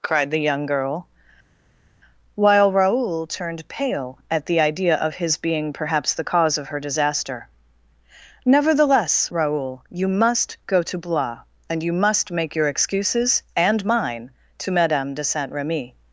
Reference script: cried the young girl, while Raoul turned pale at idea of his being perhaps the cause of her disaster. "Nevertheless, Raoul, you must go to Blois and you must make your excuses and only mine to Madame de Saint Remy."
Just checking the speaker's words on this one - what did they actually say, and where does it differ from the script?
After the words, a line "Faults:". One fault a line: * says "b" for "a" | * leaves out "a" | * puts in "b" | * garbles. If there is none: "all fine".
cried the young girl, while Raoul turned pale at the idea of his being perhaps the cause of her disaster. "Nevertheless, Raoul, you must go to Blois and you must make your excuses and mine to Madame de Saint Remy."
Faults:
* puts in "the"
* leaves out "only"